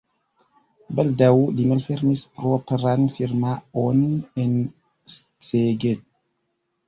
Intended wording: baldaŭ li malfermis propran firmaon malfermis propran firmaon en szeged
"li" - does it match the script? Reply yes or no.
yes